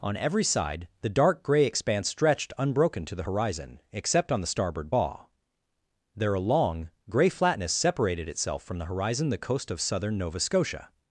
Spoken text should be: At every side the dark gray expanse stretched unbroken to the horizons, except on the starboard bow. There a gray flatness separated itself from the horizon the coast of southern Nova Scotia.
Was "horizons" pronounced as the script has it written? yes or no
no